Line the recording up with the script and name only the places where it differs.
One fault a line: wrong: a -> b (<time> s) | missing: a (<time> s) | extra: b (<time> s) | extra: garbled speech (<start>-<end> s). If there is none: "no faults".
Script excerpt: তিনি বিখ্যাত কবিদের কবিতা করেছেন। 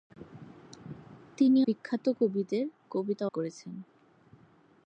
no faults